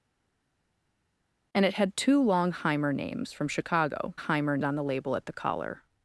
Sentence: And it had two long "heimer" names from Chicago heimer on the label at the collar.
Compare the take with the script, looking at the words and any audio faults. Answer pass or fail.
pass